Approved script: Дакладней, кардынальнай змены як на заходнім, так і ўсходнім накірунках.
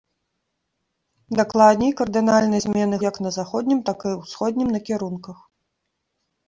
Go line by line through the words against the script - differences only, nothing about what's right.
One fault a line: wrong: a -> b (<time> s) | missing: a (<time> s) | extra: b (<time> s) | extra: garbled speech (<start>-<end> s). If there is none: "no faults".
no faults